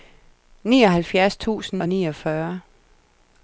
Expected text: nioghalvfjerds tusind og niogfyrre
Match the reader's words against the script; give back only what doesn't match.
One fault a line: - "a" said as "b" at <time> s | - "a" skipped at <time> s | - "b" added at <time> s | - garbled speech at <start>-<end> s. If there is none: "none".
none